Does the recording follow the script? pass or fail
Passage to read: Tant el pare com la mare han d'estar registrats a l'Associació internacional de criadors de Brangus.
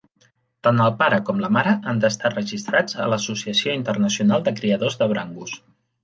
pass